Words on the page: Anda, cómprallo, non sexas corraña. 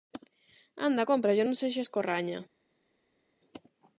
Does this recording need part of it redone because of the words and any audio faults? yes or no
no